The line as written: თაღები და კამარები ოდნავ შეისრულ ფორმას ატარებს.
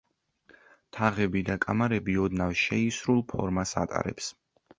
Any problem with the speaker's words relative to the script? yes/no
no